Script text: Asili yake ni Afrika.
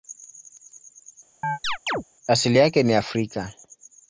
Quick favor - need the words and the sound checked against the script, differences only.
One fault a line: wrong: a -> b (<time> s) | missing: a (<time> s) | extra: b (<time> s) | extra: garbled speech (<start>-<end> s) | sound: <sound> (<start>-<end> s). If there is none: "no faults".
sound: chirp (1.4-2.0 s)